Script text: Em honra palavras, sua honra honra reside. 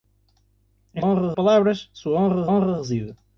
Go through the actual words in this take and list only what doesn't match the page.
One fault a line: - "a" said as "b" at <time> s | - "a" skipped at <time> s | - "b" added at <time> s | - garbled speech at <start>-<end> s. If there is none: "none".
none